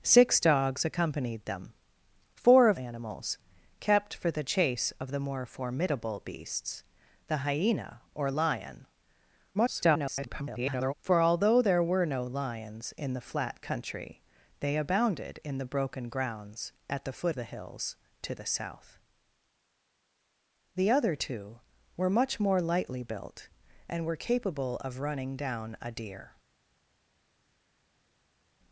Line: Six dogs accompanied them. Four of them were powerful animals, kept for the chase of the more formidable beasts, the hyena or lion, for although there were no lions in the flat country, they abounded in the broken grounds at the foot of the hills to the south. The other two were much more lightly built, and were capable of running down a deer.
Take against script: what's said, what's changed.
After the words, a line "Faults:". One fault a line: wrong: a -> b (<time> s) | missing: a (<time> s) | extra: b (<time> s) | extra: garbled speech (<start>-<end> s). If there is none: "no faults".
Six dogs accompanied them. Four of animals, kept for the chase of the more formidable beasts, the hyena or lion, [garbled] for although there were no lions in the flat country, they abounded in the broken grounds at the foot the hills to the south. The other two were much more lightly built, and were capable of running down a deer.
Faults:
missing: them were powerful (2.8 s)
extra: garbled speech (9.5-10.9 s)
missing: of (17.4 s)